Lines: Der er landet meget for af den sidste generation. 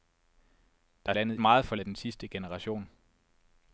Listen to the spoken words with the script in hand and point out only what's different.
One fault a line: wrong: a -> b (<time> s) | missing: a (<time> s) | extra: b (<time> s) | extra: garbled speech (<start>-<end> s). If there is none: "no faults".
no faults